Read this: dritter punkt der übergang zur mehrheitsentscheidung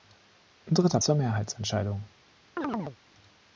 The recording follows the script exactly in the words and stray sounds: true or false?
false